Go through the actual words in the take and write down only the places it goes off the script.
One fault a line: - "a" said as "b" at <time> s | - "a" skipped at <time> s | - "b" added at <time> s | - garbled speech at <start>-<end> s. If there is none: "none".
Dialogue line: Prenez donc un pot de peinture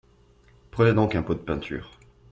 none